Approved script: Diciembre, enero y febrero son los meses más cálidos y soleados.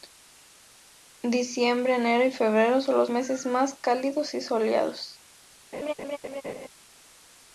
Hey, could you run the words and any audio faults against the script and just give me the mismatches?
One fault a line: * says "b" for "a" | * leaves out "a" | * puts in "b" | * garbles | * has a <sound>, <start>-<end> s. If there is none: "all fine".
* has a laugh, 5.7-6.7 s